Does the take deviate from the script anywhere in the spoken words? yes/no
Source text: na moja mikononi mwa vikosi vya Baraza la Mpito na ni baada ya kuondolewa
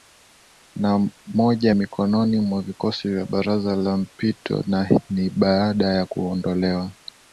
no